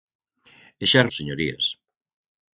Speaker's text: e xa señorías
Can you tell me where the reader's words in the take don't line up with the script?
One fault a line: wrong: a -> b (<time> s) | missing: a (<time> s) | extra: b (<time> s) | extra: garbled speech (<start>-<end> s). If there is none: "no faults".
no faults